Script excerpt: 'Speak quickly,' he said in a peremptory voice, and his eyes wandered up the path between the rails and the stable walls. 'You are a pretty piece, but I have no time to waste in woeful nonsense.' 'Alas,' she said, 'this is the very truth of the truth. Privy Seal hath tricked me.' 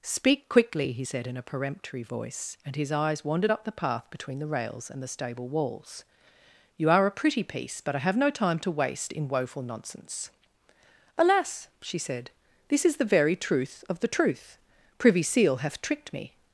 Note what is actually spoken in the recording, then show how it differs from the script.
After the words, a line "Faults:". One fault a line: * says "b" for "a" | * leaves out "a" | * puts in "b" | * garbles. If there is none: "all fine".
'Speak quickly,' he said in a peremptory voice, and his eyes wandered up the path between the rails and the stable walls. 'You are a pretty piece, but I have no time to waste in woeful nonsense.' 'Alas,' she said, 'this is the very truth of the truth. Privy Seal hath tricked me.'
Faults:
all fine